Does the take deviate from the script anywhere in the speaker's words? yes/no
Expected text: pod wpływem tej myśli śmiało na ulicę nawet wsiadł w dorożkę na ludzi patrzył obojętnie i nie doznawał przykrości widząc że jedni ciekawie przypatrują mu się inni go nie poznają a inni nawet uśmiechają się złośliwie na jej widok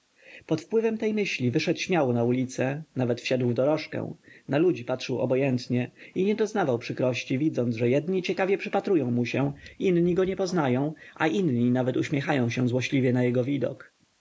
yes